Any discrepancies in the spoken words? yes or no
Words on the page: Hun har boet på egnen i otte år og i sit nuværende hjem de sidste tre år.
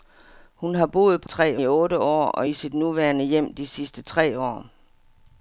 yes